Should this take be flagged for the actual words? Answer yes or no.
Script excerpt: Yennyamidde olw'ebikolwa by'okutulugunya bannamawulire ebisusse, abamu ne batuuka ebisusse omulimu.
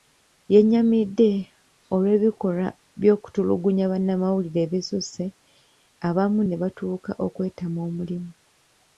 yes